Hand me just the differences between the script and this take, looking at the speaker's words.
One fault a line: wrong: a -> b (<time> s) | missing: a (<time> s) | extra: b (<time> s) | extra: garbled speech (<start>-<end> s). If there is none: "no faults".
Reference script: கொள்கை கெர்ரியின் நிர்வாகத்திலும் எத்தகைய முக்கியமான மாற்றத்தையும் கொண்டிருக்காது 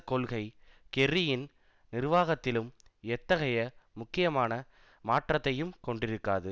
no faults